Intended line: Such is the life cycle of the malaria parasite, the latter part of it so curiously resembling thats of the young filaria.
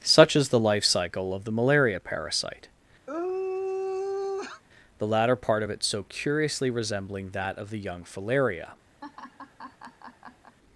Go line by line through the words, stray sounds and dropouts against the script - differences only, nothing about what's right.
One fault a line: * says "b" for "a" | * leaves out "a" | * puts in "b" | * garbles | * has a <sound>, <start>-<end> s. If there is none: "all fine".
* has a sigh, 3.1-4.6 s
* says "that" for "thats"
* has a laugh, 9.0-10.6 s